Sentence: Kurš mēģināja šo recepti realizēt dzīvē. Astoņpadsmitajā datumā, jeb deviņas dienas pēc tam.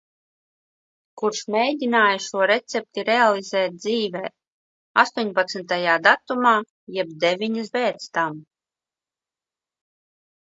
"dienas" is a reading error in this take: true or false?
true